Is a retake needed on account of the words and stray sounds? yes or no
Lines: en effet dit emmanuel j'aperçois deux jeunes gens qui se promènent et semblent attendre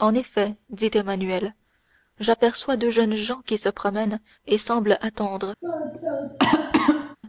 yes